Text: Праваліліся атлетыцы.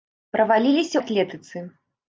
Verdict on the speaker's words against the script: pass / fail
pass